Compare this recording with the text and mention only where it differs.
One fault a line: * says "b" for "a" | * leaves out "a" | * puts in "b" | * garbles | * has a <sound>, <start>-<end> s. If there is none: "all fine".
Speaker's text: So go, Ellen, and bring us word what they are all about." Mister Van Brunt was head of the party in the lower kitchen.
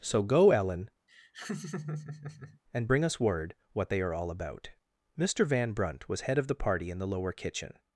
* has a laugh, 1.1-2.6 s